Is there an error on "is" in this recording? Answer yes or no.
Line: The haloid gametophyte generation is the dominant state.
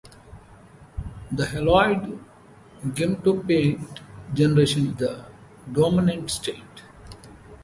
yes